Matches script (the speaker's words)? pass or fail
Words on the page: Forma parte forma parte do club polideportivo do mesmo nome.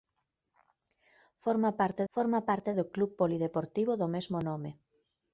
pass